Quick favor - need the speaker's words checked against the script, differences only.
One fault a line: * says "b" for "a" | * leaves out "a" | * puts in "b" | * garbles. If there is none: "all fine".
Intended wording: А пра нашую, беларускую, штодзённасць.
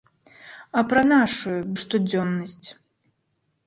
* leaves out "беларускую"